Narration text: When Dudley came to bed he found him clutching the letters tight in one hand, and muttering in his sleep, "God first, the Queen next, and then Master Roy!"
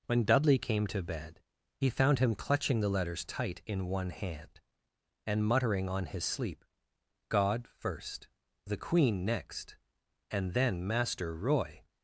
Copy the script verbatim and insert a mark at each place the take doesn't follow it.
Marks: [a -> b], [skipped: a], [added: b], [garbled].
When Dudley came to bed he found him clutching the letters tight in one hand, and muttering [in -> on] his sleep, "God first, the Queen next, and then Master Roy!"